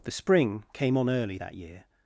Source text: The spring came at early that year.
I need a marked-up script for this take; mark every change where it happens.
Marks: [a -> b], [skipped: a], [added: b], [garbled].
The spring came [at -> on] early that year.